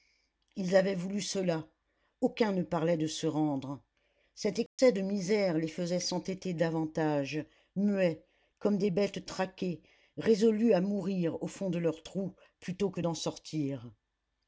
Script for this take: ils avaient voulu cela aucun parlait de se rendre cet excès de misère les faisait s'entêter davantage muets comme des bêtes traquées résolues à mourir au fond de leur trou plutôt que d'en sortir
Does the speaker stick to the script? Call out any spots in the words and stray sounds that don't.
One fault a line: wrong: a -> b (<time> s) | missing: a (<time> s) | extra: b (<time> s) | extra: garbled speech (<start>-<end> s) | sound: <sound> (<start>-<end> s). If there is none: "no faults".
extra: ne (2.5 s)
sound: dropout (4.7-4.8 s)